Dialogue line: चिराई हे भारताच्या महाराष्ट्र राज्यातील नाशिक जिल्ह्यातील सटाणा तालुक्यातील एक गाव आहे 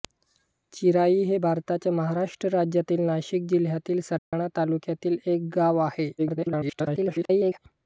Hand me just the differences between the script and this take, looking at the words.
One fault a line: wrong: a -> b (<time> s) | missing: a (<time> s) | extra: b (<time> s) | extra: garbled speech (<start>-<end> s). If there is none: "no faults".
extra: garbled speech (6.2-7.6 s)